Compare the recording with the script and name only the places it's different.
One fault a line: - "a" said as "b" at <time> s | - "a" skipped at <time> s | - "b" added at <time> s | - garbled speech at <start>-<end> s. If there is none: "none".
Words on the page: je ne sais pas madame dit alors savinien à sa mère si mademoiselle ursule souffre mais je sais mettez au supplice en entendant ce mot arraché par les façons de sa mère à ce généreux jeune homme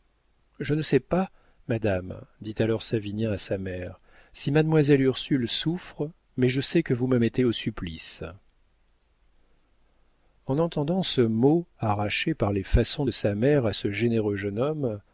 - "que vous me" added at 6.8 s